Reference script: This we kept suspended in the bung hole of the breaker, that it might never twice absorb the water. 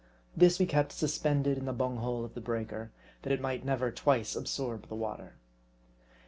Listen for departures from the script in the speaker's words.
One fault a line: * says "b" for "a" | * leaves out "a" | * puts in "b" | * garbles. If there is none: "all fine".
all fine